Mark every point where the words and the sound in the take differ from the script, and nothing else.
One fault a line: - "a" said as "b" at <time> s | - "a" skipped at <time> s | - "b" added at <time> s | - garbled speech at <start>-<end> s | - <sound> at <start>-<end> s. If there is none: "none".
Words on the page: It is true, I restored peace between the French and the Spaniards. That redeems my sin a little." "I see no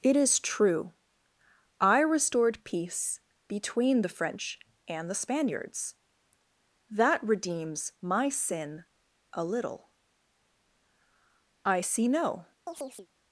- chirp at 12.7-13.1 s